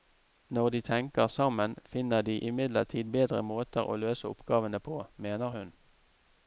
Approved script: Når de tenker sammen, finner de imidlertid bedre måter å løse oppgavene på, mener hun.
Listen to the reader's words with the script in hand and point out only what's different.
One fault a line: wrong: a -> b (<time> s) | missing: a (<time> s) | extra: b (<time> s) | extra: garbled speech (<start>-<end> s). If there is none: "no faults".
no faults